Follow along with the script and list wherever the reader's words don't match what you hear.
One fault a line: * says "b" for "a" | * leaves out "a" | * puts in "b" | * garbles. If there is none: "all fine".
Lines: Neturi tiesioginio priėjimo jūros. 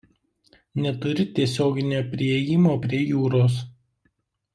* puts in "prie"